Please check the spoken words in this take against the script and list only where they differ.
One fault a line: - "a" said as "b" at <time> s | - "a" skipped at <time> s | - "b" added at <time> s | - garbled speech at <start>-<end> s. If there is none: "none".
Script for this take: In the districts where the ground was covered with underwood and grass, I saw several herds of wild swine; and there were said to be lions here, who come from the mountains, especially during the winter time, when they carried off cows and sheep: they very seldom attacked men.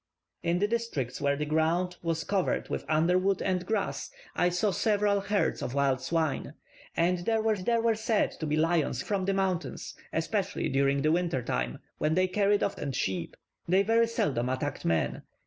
- "there were" added at 7.6 s
- "here who come" skipped at 9.0 s
- "cows" skipped at 12.8 s